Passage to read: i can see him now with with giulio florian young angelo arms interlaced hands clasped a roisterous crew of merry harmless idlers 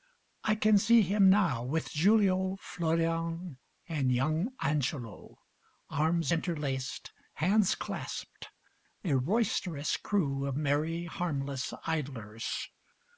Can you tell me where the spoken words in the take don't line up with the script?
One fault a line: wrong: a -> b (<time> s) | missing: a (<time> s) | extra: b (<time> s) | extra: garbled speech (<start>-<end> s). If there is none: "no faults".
missing: with (1.9 s)
extra: and (3.9 s)